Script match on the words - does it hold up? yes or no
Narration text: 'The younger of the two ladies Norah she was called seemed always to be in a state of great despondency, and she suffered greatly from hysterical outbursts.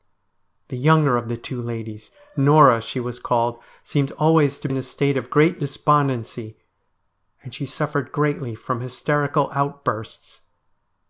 no